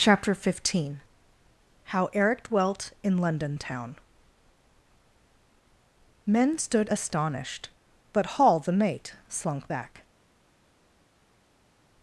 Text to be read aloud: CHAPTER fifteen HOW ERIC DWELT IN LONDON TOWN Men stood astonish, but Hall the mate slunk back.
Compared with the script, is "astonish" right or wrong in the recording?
wrong